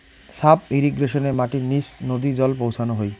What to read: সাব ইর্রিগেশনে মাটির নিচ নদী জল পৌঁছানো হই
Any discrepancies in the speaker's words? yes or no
no